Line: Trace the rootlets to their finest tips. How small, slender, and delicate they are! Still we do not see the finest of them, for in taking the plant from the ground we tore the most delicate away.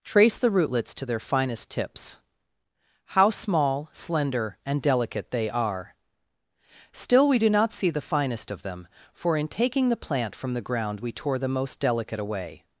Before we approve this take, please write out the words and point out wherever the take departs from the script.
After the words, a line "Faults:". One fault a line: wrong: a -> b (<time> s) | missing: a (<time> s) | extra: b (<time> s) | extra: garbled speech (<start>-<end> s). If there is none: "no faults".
Trace the rootlets to their finest tips. How small, slender, and delicate they are! Still we do not see the finest of them, for in taking the plant from the ground we tore the most delicate away.
Faults:
no faults